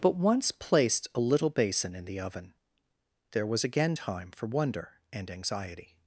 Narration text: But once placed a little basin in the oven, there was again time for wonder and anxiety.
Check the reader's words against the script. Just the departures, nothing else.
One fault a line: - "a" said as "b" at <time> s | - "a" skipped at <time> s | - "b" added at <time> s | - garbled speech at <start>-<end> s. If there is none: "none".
none